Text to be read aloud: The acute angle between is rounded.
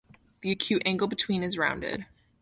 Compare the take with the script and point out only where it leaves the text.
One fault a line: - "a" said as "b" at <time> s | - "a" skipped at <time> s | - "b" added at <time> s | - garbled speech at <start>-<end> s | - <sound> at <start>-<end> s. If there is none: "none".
none